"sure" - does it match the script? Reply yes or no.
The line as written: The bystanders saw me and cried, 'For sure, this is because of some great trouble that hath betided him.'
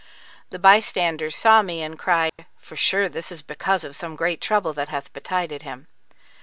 yes